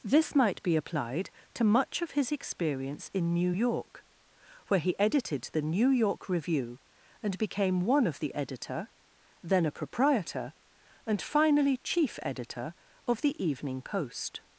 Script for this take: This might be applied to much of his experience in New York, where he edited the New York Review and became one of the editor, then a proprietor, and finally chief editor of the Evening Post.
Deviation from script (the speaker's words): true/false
false